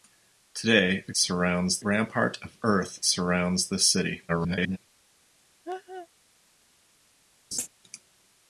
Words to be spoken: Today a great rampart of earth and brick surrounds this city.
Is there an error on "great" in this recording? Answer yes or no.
yes